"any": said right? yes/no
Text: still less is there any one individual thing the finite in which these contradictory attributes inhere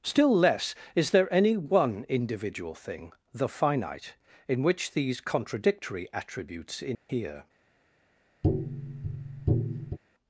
yes